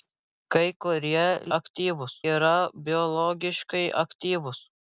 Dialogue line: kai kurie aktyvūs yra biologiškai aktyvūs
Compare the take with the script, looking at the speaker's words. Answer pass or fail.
pass